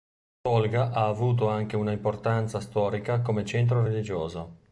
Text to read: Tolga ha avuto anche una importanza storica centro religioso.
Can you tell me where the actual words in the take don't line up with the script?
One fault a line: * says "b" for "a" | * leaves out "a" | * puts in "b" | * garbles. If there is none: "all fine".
* puts in "come"